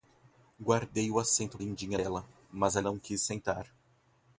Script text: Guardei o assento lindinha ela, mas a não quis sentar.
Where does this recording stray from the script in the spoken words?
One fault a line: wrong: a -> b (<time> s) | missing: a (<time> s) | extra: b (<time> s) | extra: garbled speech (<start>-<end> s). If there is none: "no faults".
no faults